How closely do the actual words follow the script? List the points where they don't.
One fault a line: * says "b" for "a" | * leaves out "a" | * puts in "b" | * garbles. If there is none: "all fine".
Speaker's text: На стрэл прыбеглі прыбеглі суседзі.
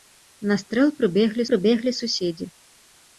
all fine